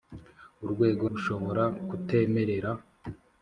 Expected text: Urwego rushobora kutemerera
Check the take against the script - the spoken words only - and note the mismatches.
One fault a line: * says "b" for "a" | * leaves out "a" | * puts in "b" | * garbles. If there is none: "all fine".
all fine